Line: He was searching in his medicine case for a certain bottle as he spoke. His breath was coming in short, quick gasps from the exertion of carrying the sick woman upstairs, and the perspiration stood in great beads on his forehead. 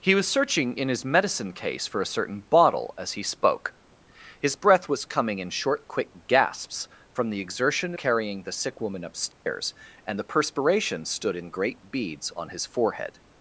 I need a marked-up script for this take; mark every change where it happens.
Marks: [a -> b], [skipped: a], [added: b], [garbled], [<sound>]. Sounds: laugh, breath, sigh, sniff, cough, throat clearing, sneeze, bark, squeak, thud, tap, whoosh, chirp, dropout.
He was searching in his medicine case for a certain bottle as he spoke. His breath was coming in short, quick gasps from the exertion [skipped: of] carrying the sick woman upstairs, [dropout] and the perspiration stood in great beads on his forehead.